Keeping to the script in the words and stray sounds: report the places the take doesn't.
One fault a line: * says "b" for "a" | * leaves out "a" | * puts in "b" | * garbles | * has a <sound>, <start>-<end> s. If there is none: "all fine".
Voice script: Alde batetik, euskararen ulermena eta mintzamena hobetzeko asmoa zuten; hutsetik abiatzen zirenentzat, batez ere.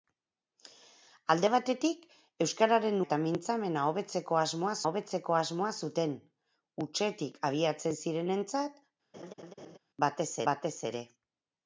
* leaves out "ulermena"
* puts in "hobetzeko asmoa"
* has a laugh, 9.1-9.8 s
* puts in "batez"